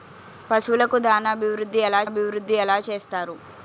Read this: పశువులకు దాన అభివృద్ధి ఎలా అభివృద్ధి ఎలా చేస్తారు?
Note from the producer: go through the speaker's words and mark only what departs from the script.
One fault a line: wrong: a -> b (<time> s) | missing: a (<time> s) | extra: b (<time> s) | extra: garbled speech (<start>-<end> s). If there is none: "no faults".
no faults